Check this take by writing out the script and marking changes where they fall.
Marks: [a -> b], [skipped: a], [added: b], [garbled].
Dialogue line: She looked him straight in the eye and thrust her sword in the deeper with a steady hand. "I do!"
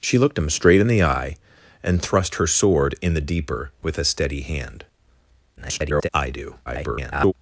She looked him straight in the eye and thrust her sword in the deeper with a steady hand. [garbled] "I do!" [garbled]